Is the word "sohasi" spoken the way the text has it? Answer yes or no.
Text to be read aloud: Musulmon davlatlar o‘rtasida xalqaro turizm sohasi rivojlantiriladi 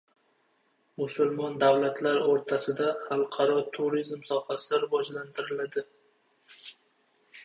yes